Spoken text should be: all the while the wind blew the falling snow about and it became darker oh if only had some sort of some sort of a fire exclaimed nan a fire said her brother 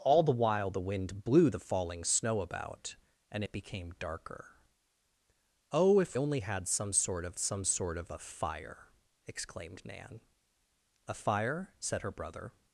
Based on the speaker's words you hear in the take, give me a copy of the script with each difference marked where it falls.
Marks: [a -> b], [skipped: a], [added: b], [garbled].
all the while the wind blew the falling snow about and it became darker oh if only had some sort of some sort of a fire exclaimed nan a fire said her brother